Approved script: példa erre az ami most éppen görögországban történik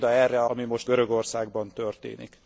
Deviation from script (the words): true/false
true